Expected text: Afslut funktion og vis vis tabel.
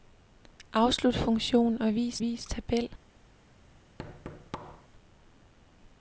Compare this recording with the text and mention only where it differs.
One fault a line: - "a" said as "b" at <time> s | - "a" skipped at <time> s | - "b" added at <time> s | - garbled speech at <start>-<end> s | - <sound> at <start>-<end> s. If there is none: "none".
- thud at 4.0-4.9 s